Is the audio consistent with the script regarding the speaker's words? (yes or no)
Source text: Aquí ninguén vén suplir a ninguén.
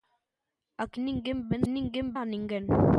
no